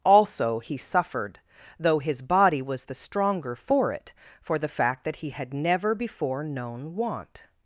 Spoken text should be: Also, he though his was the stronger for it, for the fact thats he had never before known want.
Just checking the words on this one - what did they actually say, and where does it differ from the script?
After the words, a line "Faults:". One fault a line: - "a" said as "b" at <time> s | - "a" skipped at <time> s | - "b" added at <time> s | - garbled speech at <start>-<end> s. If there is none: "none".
Also, he suffered, though his body was the stronger for it, for the fact that he had never before known want.
Faults:
- "suffered" added at 0.8 s
- "body" added at 2.2 s
- "thats" said as "that" at 5.0 s